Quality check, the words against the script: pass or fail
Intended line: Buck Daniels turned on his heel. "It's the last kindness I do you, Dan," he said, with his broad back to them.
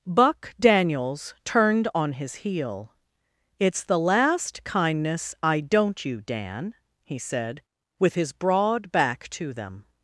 fail